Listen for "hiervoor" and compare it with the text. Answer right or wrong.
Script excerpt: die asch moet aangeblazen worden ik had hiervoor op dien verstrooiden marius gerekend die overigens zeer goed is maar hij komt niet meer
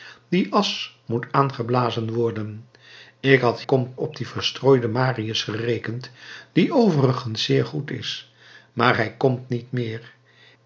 wrong